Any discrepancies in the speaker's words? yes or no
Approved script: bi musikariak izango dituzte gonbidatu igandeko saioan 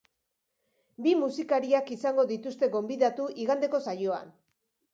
no